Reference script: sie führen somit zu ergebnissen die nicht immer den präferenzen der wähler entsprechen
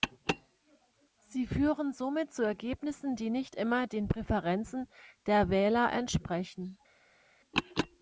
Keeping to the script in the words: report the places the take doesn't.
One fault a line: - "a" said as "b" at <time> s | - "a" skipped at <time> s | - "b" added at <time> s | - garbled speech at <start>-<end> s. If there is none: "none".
none